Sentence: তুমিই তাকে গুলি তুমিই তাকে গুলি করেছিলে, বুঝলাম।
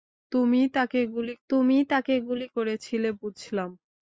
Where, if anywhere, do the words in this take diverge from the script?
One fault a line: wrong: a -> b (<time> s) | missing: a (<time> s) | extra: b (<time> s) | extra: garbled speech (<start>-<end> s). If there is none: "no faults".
no faults